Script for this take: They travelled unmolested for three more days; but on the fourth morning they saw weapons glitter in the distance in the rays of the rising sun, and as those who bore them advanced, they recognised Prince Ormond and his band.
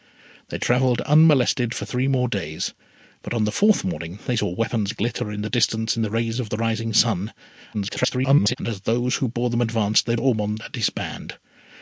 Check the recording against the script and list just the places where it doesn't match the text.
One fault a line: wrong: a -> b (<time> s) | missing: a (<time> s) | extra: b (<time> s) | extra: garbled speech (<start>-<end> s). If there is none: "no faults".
extra: garbled speech (7.7-8.6 s)
missing: recognised Prince (10.1 s)